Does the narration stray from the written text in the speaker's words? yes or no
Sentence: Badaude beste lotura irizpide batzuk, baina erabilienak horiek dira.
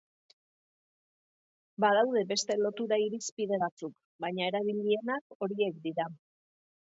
no